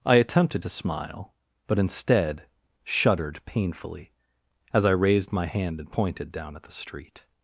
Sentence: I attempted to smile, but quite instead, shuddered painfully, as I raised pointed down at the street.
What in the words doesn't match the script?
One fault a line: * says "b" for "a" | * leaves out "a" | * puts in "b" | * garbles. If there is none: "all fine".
* leaves out "quite"
* puts in "my hand and"